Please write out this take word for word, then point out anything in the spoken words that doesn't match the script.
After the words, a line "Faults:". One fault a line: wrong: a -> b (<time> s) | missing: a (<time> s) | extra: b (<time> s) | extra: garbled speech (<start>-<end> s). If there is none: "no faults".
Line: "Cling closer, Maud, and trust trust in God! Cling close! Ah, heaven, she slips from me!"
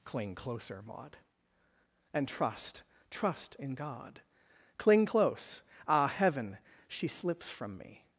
"Cling closer, Maud, and trust trust in God! Cling close! Ah, heaven, she slips from me!"
Faults:
no faults